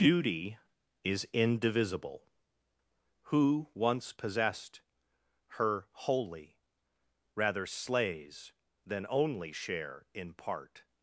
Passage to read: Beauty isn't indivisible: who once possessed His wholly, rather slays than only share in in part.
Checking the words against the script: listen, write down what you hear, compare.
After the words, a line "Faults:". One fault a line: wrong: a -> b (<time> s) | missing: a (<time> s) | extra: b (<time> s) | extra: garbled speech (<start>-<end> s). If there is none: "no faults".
Beauty is indivisible: who once possessed Her wholly, rather slays than only share in part.
Faults:
wrong: isn't -> is (1.0 s)
wrong: His -> Her (5.6 s)
missing: in (10.3 s)